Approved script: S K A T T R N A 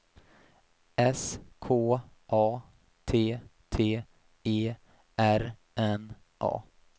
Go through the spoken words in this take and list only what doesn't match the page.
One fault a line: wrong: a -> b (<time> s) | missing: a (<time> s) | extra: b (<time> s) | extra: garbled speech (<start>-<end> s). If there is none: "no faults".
extra: E (4.4 s)